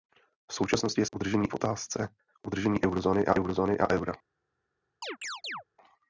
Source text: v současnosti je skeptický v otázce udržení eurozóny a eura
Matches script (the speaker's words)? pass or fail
fail